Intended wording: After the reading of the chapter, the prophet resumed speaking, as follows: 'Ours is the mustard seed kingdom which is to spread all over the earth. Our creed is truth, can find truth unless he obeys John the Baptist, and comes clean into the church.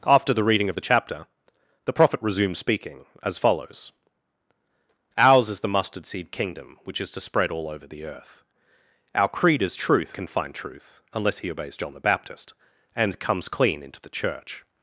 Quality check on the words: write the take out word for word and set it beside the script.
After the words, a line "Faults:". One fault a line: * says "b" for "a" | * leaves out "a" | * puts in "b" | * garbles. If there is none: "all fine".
After the reading of the chapter, the prophet resumed speaking, as follows: 'Ours is the mustard seed kingdom which is to spread all over the earth. Our creed is truth, can find truth unless he obeys John the Baptist, and comes clean into the church.
Faults:
all fine